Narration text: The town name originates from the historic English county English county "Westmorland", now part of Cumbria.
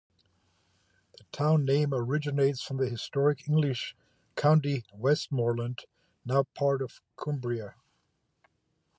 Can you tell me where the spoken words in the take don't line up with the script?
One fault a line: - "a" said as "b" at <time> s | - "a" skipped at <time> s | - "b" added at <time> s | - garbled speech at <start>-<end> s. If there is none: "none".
- "English county" skipped at 4.8 s